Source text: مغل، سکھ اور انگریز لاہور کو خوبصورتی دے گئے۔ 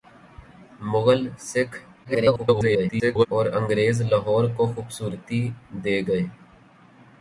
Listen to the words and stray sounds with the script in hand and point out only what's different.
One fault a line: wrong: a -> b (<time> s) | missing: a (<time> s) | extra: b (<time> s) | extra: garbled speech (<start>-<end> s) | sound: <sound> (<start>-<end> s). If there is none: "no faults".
extra: garbled speech (2.0-3.3 s)